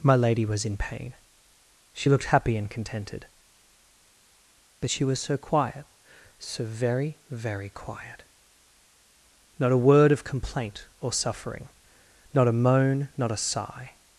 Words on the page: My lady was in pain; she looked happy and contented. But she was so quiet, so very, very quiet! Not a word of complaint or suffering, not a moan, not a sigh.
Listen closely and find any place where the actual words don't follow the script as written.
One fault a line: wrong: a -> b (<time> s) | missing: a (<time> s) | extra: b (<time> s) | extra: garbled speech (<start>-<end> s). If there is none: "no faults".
no faults